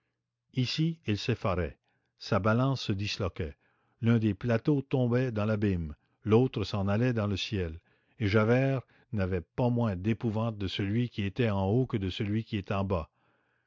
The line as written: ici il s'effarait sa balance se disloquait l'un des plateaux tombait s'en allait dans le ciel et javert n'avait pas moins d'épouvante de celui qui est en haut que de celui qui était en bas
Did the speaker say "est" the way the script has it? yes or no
no